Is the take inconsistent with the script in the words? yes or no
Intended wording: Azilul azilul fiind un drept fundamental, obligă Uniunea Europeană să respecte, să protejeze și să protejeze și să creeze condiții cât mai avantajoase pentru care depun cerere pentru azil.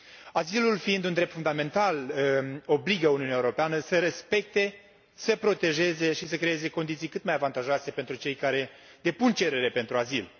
yes